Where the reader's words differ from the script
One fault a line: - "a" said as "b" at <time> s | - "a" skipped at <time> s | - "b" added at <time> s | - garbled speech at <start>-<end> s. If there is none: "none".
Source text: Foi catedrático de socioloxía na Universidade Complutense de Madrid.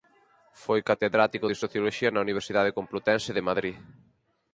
none